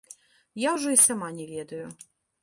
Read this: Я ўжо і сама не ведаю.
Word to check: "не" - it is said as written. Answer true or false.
true